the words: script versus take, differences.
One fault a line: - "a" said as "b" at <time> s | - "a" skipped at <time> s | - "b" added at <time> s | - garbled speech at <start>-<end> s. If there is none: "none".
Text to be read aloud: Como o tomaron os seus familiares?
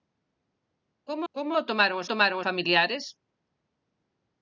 - "como" added at 1.3 s
- "seus" said as "tomaron" at 2.1 s